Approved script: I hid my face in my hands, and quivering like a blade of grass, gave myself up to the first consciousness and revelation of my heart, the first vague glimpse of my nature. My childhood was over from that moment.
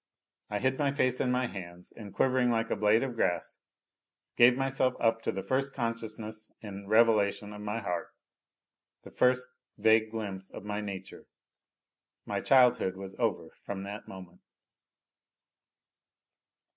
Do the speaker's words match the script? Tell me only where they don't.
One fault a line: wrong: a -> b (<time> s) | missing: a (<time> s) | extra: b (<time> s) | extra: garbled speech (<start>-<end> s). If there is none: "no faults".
no faults